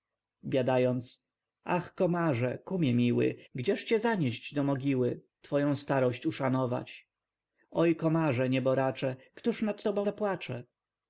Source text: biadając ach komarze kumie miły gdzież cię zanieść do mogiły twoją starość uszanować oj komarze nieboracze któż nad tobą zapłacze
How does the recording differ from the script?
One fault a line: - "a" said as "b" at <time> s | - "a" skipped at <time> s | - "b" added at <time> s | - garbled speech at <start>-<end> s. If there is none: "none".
none